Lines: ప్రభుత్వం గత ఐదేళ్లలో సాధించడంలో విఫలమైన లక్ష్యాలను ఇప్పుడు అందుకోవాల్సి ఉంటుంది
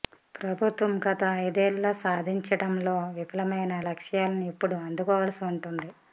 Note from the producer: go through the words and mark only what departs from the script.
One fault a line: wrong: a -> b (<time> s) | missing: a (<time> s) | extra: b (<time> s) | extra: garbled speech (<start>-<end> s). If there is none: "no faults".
no faults